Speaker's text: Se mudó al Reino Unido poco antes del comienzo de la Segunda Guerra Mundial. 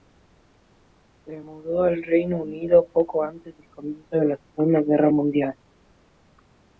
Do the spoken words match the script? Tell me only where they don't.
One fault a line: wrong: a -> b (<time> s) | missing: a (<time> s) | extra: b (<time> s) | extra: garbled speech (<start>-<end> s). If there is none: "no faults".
no faults